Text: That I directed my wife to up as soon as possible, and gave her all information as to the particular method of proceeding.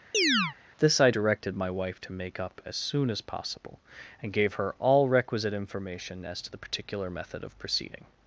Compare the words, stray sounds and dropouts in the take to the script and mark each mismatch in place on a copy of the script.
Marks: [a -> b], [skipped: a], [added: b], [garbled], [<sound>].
[chirp] [That -> This] I directed my wife to [added: make] up as soon as possible, and gave her all [added: requisite] information as to the particular method of proceeding.